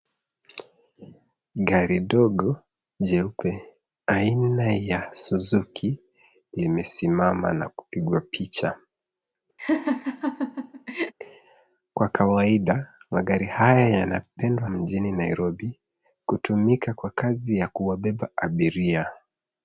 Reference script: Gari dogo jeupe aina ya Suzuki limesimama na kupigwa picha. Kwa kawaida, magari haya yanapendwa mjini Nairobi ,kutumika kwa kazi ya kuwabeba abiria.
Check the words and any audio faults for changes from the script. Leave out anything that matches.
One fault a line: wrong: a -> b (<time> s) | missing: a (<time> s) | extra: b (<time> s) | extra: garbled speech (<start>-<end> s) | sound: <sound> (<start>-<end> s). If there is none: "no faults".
sound: laugh (9.6-11.1 s)